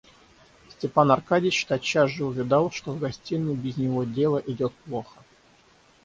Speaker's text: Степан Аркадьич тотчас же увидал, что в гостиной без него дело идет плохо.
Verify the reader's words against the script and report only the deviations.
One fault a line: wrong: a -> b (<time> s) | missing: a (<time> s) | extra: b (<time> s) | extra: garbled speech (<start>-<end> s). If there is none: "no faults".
no faults